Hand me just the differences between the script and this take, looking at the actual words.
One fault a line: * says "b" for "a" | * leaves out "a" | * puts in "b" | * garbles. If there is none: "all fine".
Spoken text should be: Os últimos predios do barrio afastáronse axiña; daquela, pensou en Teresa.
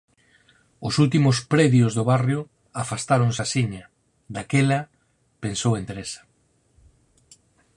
all fine